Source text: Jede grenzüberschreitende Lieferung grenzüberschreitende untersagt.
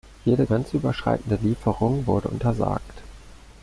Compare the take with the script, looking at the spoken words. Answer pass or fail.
fail